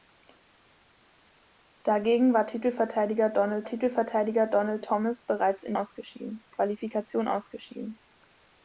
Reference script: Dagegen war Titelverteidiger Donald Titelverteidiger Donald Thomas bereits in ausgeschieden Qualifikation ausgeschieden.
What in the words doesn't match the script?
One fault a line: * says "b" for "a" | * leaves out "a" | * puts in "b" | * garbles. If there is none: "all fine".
all fine